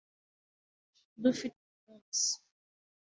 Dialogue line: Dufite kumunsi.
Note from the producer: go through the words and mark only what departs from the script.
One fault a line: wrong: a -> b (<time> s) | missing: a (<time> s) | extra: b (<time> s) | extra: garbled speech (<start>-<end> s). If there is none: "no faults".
no faults